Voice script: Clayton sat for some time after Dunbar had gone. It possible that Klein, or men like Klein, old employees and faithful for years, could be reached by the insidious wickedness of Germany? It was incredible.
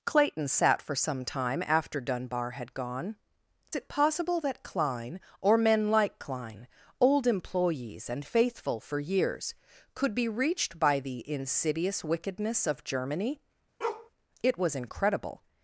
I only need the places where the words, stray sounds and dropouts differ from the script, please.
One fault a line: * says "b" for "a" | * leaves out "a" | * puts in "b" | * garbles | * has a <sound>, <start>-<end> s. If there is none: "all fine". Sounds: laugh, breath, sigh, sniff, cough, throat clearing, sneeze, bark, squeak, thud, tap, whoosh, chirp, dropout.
* has a bark, 13.8-14.1 s